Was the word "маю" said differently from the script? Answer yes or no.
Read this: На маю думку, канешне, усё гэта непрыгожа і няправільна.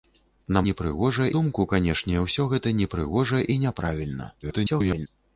yes